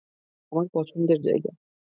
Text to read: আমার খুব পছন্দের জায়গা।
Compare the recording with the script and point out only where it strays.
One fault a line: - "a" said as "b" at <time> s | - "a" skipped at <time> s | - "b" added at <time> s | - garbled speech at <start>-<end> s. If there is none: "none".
- "খুব" skipped at 0.7 s